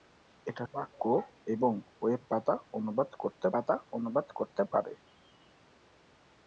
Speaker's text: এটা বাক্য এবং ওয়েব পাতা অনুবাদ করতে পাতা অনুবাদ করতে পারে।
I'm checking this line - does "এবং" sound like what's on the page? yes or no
yes